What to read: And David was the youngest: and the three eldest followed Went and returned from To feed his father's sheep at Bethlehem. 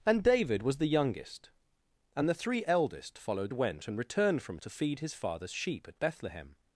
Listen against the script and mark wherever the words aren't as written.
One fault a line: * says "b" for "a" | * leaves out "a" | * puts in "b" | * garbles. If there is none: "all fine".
all fine